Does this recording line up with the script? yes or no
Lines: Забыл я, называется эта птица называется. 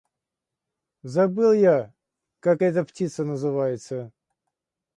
no